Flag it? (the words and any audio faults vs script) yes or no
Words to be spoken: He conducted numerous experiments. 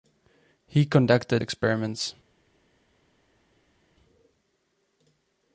yes